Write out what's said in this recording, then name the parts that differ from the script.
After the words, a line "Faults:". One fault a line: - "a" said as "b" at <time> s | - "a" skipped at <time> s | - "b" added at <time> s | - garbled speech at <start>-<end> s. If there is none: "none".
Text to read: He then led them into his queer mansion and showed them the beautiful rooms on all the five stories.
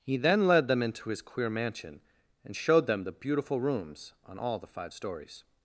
He then led them into his queer mansion and showed them the beautiful rooms on all the five stories.
Faults:
none